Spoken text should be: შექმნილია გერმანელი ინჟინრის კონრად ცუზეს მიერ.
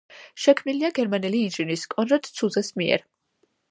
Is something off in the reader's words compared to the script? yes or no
no